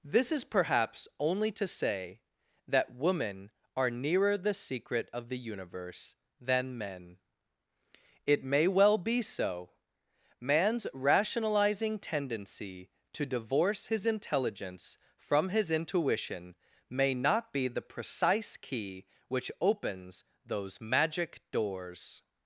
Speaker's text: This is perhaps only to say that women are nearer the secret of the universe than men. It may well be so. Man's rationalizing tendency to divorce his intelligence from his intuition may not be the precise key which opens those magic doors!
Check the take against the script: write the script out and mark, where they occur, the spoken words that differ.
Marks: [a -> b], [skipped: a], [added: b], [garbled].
This is perhaps only to say that women are nearer the secret of the universe than men. It may well be so. Man's rationalizing tendency to divorce his intelligence from his intuition may not be the precise key which opens those magic doors!